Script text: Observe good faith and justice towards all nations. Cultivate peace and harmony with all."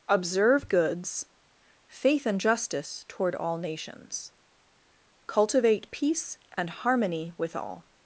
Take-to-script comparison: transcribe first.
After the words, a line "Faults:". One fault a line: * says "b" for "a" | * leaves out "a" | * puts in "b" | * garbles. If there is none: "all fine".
Observe goods faith and justice toward all nations. Cultivate peace and harmony with all."
Faults:
* says "goods" for "good"
* says "toward" for "towards"